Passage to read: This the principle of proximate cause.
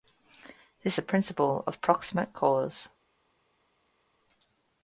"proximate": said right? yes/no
yes